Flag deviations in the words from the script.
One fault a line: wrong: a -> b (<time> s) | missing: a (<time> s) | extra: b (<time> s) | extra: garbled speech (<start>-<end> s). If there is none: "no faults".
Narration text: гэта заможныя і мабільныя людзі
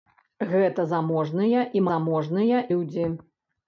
wrong: мабільныя -> заможныя (1.9 s)